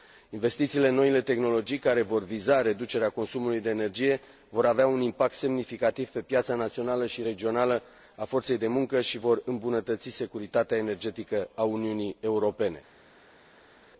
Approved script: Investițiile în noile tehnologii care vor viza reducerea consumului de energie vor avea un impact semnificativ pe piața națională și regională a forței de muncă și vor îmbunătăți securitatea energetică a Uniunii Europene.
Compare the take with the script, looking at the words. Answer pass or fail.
pass